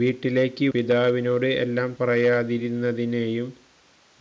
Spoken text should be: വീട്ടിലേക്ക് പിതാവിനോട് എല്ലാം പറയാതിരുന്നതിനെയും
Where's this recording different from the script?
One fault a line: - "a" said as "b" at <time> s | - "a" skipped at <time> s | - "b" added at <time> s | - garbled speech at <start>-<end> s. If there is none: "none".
none